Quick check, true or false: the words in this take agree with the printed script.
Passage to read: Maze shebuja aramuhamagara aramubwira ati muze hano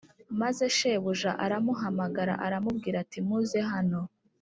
true